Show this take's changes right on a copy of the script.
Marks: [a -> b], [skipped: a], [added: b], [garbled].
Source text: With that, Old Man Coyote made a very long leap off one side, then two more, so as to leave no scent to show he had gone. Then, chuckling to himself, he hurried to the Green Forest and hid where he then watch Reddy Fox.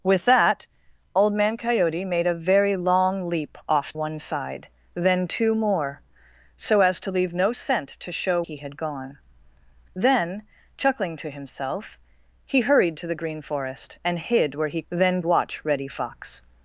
With that, Old Man Coyote made a very long leap off one side, then two more, so as to leave no scent to show he had gone. Then, chuckling to himself, he hurried to the Green Forest and hid where he then watch Reddy Fox.